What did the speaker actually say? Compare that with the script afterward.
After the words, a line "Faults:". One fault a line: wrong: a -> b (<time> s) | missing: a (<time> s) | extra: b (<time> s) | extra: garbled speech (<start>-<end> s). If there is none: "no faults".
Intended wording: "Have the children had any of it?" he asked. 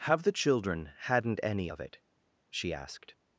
"Have the children hadn't any of it?" she asked.
Faults:
wrong: had -> hadn't (1.0 s)
wrong: he -> she (2.5 s)